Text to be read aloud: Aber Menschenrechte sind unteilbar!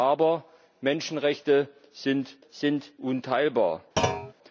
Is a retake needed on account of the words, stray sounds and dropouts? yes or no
yes